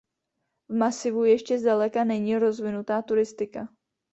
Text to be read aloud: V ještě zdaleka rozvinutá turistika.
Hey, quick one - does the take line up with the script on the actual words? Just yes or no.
no